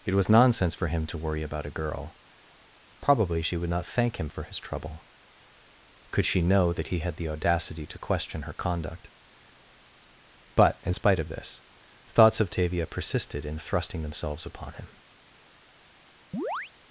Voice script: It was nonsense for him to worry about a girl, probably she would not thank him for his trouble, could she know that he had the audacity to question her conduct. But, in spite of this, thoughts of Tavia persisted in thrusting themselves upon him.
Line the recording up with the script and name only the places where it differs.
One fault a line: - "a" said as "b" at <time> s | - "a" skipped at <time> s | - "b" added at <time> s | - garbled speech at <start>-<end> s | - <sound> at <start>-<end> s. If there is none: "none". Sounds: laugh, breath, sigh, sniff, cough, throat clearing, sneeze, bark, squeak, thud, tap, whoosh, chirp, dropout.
- chirp at 16.3-16.7 s